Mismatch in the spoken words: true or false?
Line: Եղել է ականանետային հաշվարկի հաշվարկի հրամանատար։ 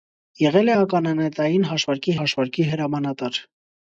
false